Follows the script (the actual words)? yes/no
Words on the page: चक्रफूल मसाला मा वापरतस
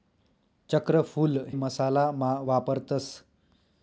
yes